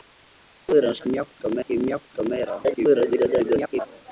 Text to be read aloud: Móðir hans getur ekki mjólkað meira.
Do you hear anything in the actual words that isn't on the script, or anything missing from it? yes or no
yes